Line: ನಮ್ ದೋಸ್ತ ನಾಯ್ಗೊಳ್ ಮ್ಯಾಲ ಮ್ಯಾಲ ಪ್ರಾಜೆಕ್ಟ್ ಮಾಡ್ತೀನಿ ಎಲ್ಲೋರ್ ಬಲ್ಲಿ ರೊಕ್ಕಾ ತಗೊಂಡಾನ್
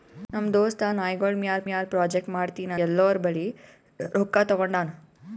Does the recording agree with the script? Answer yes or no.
yes